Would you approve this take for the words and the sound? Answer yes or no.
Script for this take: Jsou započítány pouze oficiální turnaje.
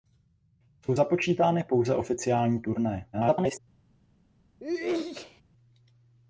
no